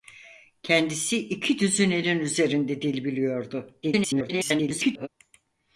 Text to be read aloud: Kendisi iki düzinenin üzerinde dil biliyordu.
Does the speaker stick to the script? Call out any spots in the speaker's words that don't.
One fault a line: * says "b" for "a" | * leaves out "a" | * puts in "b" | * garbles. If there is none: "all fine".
* garbles